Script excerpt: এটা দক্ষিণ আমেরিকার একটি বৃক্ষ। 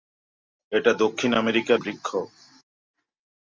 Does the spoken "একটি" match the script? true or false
false